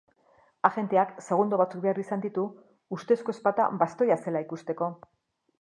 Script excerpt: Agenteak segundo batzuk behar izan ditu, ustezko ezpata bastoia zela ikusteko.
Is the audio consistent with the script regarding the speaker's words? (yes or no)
yes